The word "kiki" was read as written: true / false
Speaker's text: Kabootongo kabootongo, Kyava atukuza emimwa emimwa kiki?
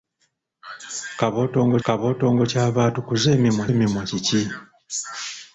true